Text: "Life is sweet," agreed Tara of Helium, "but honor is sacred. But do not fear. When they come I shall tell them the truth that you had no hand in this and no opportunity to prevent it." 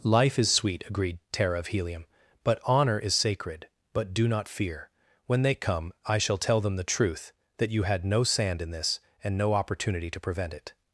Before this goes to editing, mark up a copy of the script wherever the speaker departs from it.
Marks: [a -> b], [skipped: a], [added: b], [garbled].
"Life is sweet," agreed Tara of Helium, "but honor is sacred. But do not fear. When they come I shall tell them the truth that you had no [hand -> sand] in this and no opportunity to prevent it."